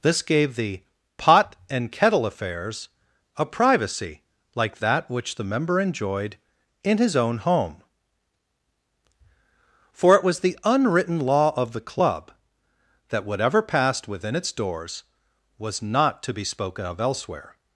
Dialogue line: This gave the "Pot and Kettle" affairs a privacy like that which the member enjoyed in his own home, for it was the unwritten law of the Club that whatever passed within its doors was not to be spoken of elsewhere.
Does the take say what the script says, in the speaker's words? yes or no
yes